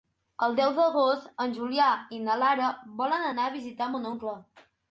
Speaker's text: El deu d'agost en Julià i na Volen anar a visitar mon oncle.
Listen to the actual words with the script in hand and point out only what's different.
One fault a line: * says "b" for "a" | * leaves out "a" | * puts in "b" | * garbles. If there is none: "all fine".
* puts in "Lara"